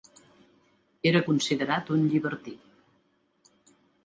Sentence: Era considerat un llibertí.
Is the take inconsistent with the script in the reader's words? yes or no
no